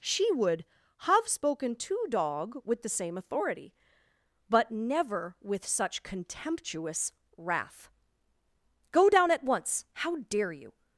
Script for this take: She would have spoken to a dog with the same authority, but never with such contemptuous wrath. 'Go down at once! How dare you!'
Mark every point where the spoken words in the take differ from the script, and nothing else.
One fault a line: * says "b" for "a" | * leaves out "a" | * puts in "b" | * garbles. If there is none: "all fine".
* leaves out "a"